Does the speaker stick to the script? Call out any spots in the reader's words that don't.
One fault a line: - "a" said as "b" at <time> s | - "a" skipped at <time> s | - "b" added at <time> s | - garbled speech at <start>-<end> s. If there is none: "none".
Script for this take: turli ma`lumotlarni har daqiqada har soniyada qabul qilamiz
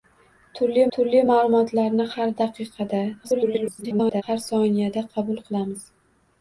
- "turli" added at 1.0 s
- garbled speech at 3.2-4.2 s